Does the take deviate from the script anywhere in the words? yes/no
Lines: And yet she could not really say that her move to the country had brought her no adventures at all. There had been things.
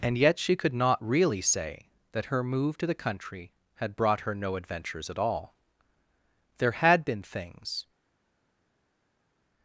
no